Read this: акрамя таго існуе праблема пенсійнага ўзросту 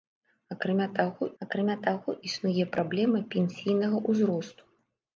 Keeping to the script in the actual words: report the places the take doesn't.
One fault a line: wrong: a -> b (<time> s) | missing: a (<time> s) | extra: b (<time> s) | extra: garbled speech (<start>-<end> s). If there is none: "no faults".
extra: акрамя таго (1.4 s)